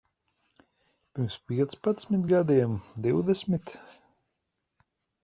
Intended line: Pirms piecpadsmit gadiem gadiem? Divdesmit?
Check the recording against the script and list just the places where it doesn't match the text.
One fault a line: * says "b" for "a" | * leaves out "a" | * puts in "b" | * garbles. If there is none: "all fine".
* leaves out "gadiem"